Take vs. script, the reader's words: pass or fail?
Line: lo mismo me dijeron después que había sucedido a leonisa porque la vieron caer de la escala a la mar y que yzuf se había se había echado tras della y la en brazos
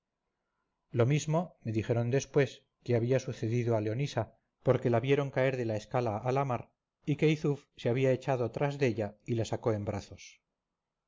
fail